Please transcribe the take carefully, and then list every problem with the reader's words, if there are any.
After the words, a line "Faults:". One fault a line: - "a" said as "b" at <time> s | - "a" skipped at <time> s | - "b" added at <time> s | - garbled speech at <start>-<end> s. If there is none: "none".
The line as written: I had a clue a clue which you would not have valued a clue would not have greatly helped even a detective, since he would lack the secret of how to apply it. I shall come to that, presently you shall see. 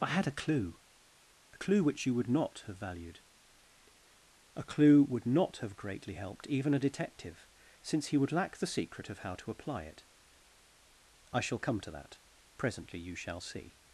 I had a clue a clue which you would not have valued a clue would not have greatly helped even a detective, since he would lack the secret of how to apply it. I shall come to that, presently you shall see.
Faults:
none